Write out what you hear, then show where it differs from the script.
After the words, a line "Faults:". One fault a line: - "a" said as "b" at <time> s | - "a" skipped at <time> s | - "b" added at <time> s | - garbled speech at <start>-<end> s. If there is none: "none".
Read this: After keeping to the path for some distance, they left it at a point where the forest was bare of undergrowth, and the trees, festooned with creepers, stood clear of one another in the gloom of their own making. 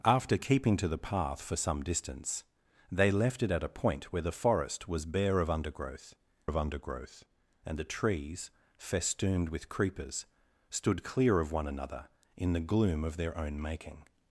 After keeping to the path for some distance, they left it at a point where the forest was bare of undergrowth of undergrowth, and the trees, festooned with creepers, stood clear of one another in the gloom of their own making.
Faults:
- "of undergrowth" added at 6.5 s